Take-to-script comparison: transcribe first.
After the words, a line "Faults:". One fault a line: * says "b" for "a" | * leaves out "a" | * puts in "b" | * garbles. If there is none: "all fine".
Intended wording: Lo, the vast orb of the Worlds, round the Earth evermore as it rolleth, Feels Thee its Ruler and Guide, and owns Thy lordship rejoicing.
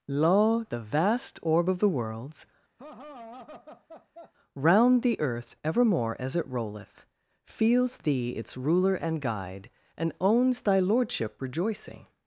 Lo, the vast orb of the Worlds, round the Earth evermore as it rolleth, Feels Thee its Ruler and Guide, and owns Thy lordship rejoicing.
Faults:
all fine